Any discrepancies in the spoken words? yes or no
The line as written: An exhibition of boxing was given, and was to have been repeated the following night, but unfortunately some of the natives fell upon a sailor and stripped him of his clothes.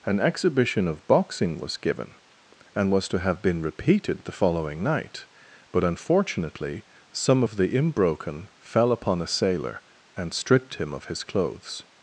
yes